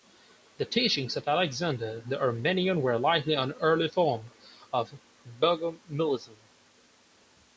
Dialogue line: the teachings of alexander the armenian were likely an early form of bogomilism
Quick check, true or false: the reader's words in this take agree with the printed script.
true